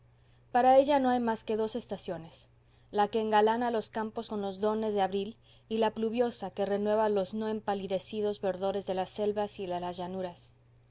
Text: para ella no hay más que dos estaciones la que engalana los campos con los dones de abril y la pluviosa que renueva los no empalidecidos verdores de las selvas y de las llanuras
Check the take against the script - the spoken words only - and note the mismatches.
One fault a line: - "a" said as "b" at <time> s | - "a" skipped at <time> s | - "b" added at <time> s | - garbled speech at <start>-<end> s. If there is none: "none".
none